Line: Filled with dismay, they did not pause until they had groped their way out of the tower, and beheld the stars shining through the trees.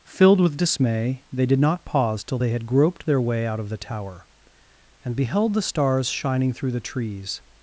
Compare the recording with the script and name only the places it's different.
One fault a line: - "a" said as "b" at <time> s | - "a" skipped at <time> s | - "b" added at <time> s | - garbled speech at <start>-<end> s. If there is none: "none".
- "until" said as "till" at 2.2 s